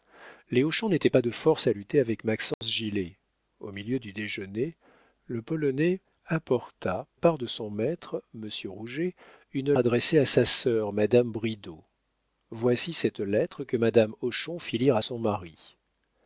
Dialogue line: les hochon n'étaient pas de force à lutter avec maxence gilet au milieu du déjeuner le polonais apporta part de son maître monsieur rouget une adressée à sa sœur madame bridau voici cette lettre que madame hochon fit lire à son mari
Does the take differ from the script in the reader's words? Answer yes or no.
no